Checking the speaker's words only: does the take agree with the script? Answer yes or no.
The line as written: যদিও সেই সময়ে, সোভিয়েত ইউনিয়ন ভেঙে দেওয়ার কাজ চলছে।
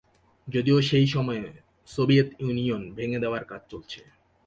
yes